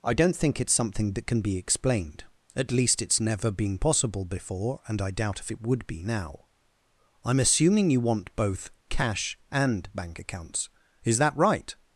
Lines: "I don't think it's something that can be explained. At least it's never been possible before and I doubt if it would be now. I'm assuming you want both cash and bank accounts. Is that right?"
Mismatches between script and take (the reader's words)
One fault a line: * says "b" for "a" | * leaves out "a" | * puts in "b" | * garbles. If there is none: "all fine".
all fine